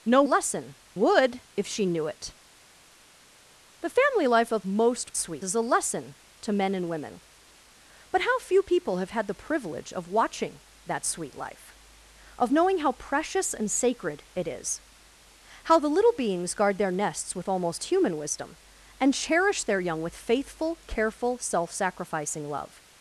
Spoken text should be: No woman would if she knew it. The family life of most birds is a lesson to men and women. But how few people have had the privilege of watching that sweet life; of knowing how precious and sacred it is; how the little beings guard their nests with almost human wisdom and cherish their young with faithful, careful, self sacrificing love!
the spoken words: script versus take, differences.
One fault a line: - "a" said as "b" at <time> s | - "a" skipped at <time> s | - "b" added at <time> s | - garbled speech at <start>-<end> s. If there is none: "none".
- "woman" said as "lesson" at 0.2 s
- "birds" said as "sweet" at 5.2 s